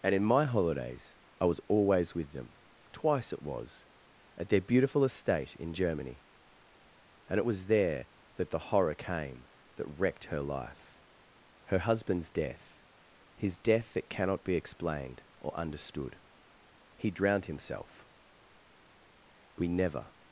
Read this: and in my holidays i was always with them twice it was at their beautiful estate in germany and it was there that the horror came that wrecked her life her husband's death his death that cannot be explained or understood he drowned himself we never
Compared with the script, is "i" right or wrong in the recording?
right